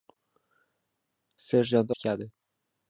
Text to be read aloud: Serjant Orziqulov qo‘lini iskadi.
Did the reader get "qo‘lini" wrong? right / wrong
wrong